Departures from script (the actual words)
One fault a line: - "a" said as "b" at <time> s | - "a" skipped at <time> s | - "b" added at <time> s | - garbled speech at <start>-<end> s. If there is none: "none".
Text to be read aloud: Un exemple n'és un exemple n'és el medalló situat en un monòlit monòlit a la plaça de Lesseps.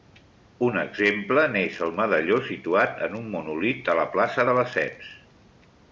- "un exemple n'és" skipped at 1.8 s
- "monòlit" skipped at 3.9 s